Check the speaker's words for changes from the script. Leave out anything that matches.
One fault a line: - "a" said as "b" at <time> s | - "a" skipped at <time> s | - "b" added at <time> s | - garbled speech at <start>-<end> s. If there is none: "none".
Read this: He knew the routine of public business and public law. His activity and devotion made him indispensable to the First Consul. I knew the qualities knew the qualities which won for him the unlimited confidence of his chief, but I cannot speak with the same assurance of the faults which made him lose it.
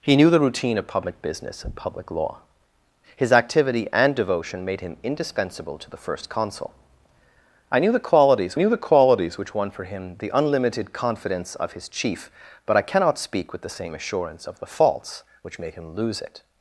none